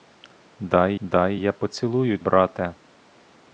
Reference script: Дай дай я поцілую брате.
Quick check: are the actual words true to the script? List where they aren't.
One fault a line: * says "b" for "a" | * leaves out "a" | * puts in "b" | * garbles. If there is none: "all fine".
all fine